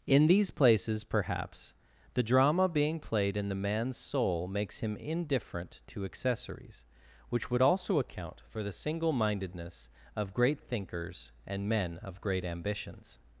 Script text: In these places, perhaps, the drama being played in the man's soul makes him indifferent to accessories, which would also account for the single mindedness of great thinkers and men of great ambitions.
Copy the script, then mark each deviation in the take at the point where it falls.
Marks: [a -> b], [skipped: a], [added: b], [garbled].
In these places, perhaps, the drama being played in the man's soul makes him indifferent to accessories, which would also account for the single mindedness of great thinkers and men of great ambitions.